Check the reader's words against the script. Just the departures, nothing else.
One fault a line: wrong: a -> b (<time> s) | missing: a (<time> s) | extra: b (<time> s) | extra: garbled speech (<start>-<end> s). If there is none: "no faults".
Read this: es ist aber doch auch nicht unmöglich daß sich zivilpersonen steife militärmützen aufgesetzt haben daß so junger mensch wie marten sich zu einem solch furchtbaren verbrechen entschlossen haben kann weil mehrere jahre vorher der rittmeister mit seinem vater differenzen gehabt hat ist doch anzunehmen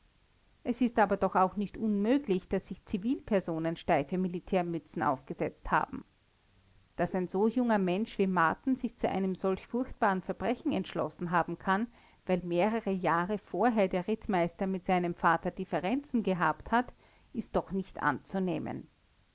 extra: ein (7.1 s)
extra: nicht (17.7 s)